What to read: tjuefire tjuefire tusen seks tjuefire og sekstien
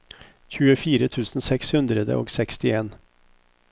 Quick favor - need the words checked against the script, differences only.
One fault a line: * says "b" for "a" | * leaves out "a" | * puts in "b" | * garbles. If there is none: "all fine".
* leaves out "tjuefire"
* says "hundre" for "tjuefire"